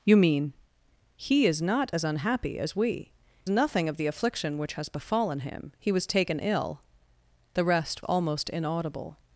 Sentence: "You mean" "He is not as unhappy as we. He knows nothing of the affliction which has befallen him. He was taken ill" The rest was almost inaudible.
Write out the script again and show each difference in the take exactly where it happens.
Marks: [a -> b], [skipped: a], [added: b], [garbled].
"You mean" "He is not as unhappy as we. [skipped: He knows] nothing of the affliction which has befallen him. He was taken ill" The rest [skipped: was] almost inaudible.